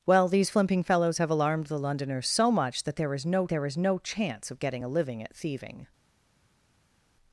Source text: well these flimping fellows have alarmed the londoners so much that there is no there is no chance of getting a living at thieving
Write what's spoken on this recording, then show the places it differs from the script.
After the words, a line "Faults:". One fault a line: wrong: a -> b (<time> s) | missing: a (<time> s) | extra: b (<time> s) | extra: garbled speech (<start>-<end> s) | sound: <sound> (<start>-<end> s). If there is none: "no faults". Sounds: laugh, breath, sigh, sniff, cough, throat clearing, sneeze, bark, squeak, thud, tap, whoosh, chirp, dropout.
well these flimping fellows have alarmed the londoners so much that there is no there is no chance of getting a living at thieving
Faults:
no faults